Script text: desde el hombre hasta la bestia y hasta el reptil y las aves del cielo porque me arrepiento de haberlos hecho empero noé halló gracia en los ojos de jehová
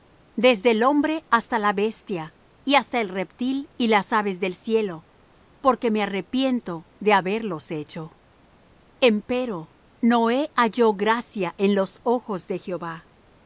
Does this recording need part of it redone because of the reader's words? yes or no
no